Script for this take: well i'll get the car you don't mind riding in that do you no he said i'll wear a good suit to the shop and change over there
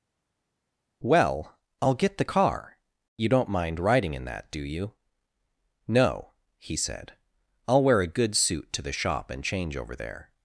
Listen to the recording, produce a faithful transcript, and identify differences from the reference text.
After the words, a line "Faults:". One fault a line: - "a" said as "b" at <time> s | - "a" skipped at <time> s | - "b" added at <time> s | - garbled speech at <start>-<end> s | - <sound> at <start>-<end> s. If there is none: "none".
well i'll get the car you don't mind riding in that do you no he said i'll wear a good suit to the shop and change over there
Faults:
none